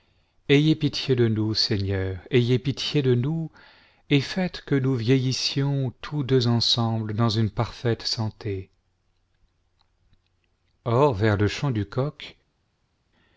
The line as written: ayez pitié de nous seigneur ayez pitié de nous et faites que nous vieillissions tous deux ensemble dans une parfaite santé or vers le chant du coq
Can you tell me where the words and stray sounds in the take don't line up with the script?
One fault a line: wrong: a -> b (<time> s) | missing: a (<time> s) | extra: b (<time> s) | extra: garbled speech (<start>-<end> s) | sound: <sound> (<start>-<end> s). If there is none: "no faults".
no faults